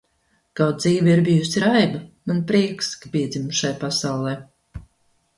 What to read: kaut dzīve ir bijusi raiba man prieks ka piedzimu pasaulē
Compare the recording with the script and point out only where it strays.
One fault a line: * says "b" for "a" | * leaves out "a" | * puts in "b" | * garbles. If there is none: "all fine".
* puts in "šai"